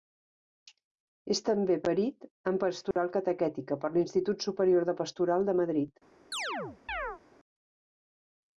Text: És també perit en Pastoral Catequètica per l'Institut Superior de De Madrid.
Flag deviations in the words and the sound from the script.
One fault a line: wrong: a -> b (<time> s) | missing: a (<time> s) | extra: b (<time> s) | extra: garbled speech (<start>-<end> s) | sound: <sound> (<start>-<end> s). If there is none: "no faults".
sound: dropout (2.9-3.0 s)
extra: Pastoral (5.0 s)
sound: chirp (6.3-7.2 s)